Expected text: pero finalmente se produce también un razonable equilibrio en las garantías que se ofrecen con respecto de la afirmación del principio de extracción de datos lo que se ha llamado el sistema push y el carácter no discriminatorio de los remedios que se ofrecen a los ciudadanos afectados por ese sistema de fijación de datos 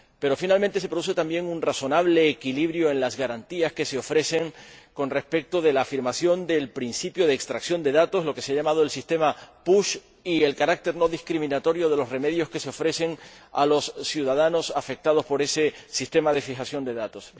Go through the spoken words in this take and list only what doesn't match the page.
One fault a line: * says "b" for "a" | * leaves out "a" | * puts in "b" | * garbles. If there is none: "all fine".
all fine